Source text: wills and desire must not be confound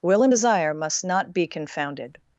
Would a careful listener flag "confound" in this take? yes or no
yes